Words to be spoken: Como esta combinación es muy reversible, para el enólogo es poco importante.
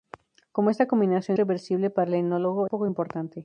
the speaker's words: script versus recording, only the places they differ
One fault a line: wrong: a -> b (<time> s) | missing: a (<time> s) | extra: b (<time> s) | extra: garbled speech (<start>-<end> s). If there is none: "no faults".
missing: es muy (1.4 s)
missing: es (2.7 s)